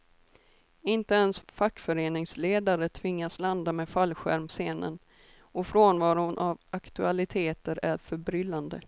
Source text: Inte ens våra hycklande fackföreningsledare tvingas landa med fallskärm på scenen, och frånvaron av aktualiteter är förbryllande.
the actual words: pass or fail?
fail